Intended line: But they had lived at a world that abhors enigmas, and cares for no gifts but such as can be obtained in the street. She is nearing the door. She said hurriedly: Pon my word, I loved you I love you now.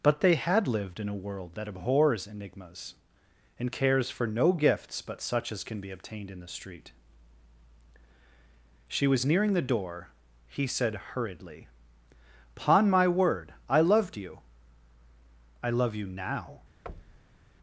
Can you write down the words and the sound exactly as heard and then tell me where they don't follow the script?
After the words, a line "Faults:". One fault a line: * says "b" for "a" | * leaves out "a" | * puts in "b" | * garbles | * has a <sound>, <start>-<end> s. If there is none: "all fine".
But they had lived in a world that abhors enigmas, and cares for no gifts but such as can be obtained in the street. She was nearing the door. He said hurriedly: Pon my word, I loved you I love you now.
Faults:
* says "in" for "at"
* says "was" for "is"
* says "He" for "She"
* has a thud, 16.9-17.4 s